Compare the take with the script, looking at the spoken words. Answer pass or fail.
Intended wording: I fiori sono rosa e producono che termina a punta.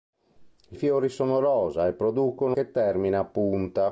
pass